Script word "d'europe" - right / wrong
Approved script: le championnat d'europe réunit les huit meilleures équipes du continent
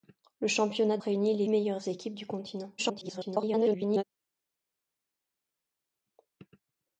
wrong